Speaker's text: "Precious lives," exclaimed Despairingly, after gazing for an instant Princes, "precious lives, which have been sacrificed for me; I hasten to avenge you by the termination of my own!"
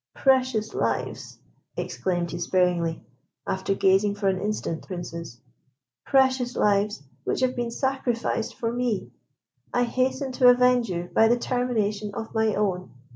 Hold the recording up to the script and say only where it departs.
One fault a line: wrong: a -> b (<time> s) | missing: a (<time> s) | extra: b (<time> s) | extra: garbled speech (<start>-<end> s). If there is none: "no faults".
no faults